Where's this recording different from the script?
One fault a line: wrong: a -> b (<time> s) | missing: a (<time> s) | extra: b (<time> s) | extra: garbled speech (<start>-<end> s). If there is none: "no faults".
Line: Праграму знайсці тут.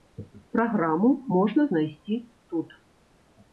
extra: можна (1.4 s)